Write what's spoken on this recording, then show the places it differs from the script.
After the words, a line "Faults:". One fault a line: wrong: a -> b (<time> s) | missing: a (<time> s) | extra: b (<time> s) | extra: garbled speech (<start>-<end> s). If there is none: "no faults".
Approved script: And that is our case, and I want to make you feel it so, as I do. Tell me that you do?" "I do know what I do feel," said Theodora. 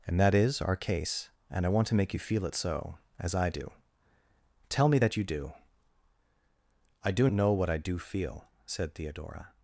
And that is our case, and I want to make you feel it so, as I do. Tell me that you do?" "I do know what I do feel," said Theodora.
Faults:
no faults